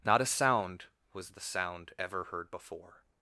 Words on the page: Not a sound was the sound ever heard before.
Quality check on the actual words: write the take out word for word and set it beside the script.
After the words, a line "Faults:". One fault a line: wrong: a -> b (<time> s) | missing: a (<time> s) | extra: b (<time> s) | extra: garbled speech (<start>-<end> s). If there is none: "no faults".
Not a sound was the sound ever heard before.
Faults:
no faults